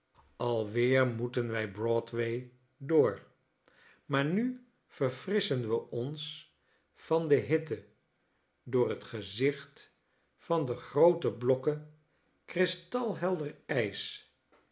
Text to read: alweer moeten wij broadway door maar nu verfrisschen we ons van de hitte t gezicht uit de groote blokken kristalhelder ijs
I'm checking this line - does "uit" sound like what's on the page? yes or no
no